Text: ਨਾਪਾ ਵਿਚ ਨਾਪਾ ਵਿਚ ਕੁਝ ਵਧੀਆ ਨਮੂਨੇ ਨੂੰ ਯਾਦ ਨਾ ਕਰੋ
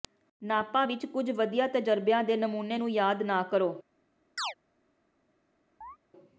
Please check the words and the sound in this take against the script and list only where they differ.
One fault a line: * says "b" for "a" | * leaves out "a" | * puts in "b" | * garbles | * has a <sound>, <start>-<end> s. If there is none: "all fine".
* says "ਕੁਝ ਵਧੀਆ ਤਜਰਬਿਆਂ ਦੇ" for "ਨਾਪਾ ਵਿਚ ਕੁਝ ਵਧੀਆ"
* has a chirp, 4.4-4.5 s
* has a chirp, 5.8-6.0 s